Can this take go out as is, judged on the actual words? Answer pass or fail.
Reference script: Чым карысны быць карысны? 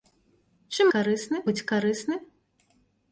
pass